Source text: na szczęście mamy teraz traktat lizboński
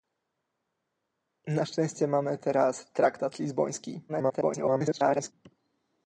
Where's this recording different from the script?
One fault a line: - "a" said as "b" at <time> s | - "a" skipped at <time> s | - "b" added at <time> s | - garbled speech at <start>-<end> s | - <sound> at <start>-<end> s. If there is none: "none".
- garbled speech at 4.1-5.3 s